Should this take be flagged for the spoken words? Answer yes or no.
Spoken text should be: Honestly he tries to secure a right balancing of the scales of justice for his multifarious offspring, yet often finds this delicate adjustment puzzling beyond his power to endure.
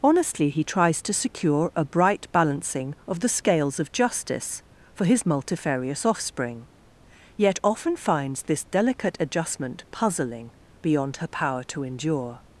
yes